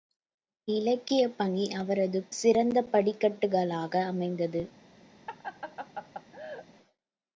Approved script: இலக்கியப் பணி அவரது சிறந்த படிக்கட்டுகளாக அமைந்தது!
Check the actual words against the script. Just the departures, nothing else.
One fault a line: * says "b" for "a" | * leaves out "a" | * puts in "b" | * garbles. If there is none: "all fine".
all fine